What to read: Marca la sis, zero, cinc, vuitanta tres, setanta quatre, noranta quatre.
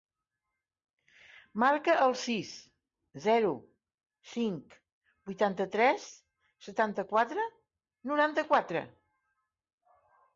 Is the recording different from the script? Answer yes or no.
yes